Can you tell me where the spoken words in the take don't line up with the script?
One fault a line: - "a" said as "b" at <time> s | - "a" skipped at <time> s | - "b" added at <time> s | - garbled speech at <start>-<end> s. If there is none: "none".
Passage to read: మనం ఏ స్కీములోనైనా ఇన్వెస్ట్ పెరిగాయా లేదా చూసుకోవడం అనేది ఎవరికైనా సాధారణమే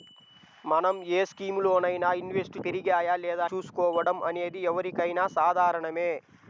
none